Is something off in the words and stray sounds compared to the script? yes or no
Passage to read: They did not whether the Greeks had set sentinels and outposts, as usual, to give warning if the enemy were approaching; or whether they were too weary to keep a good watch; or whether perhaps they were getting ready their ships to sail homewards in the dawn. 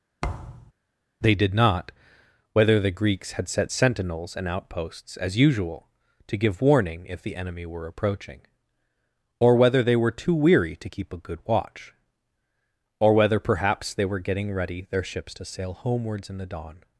yes